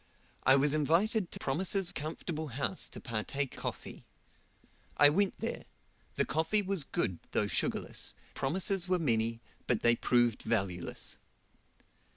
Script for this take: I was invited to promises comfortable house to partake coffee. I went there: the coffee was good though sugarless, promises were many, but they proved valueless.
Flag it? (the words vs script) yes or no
no